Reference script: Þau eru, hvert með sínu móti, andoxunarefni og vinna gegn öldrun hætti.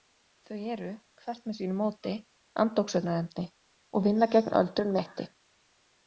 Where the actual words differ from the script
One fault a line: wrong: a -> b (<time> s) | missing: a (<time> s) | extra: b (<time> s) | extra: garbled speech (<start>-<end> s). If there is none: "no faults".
no faults